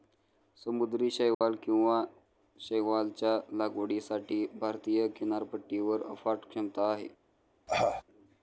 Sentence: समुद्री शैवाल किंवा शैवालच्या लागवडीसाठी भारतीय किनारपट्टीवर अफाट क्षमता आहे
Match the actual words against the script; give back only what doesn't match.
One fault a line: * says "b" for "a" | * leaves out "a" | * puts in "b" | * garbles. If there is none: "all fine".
all fine